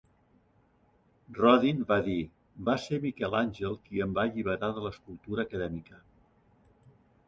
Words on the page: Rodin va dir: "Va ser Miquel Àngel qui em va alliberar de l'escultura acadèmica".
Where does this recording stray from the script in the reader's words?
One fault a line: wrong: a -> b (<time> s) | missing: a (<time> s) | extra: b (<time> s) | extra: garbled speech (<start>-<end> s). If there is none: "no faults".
no faults